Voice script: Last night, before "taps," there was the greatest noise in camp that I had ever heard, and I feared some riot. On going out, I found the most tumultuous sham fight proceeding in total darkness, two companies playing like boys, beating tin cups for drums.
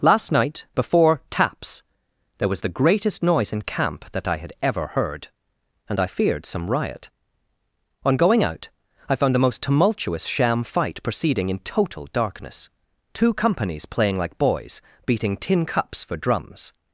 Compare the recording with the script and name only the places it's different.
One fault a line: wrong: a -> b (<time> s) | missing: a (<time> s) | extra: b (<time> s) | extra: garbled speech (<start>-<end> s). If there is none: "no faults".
no faults